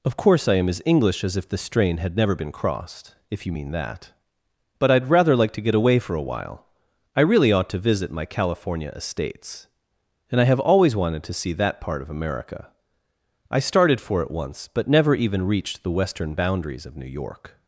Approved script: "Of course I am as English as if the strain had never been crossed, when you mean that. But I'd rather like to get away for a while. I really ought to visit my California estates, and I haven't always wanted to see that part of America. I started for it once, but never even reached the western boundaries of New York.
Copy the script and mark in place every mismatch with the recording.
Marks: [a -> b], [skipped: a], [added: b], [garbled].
"Of course I am as English as if the strain had never been crossed, [when -> if] you mean that. But I'd rather like to get away for a while. I really ought to visit my California estates, and I [haven't -> have] always wanted to see that part of America. I started for it once, but never even reached the western boundaries of New York.